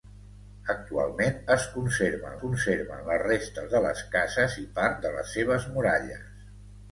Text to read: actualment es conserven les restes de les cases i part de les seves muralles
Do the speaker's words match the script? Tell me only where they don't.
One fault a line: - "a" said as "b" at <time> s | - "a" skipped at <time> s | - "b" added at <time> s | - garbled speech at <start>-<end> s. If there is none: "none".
- "conserven" added at 2.4 s